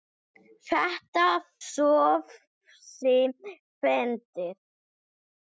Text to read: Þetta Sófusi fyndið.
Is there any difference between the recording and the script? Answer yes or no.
no